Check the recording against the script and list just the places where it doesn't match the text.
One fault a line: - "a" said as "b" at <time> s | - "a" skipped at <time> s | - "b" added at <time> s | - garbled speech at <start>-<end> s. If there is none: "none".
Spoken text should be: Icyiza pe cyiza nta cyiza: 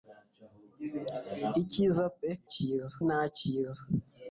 none